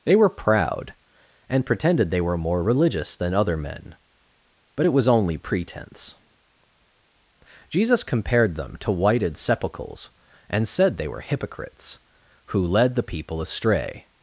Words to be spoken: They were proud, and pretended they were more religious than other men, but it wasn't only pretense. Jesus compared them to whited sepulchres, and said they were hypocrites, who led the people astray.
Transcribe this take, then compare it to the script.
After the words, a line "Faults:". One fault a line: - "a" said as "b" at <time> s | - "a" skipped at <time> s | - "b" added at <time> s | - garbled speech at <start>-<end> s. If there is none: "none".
They were proud, and pretended they were more religious than other men, but it was only pretense. Jesus compared them to whited sepulchres, and said they were hypocrites, who led the people astray.
Faults:
- "wasn't" said as "was" at 4.9 s